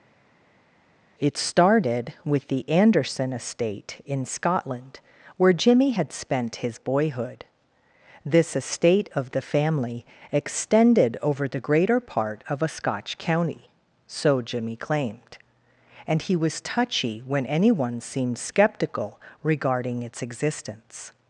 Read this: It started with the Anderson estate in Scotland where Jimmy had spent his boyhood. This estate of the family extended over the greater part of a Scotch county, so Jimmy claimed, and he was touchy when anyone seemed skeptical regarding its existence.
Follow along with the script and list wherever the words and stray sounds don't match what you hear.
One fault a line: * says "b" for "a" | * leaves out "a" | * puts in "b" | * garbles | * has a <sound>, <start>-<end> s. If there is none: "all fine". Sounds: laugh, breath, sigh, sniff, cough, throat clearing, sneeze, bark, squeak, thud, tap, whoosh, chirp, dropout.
all fine